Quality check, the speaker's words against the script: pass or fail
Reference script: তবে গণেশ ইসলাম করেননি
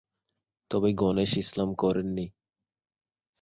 pass